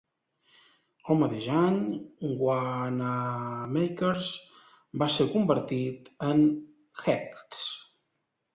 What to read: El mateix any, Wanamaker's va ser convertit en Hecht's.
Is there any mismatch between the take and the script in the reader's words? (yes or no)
no